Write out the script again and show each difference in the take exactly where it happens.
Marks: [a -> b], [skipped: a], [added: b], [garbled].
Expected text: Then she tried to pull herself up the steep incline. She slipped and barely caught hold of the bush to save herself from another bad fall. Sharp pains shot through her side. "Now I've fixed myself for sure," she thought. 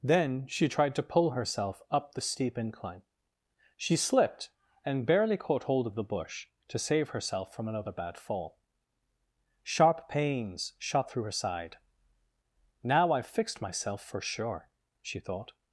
Then she tried to pull herself up the steep incline. She slipped and barely caught hold of the bush to save herself from another bad fall. Sharp pains shot through her side. "Now I've fixed myself for sure," she thought.